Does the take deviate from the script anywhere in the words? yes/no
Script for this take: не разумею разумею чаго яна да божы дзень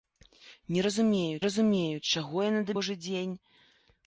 no